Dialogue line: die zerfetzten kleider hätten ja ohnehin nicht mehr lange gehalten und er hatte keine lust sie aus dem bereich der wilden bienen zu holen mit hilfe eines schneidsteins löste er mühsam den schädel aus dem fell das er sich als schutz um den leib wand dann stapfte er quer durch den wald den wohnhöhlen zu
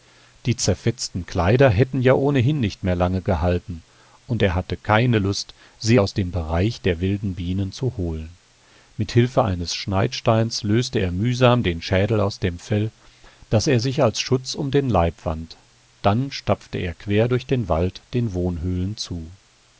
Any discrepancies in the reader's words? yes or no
no